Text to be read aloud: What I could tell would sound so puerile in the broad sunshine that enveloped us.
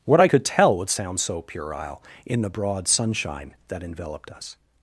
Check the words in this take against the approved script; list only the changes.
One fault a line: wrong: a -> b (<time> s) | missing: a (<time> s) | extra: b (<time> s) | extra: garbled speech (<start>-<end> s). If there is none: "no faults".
no faults